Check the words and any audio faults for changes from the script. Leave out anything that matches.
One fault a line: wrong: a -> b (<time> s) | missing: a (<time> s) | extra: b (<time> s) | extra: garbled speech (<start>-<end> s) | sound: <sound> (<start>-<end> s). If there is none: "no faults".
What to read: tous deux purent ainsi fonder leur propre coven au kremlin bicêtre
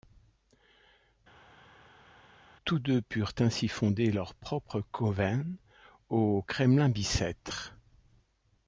no faults